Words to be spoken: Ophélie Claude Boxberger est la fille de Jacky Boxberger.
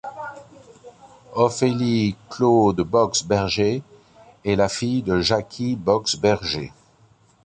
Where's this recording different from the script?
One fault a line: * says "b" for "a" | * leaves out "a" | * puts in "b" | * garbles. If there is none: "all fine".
all fine